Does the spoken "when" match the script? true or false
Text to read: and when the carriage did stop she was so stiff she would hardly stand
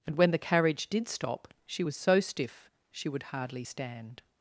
true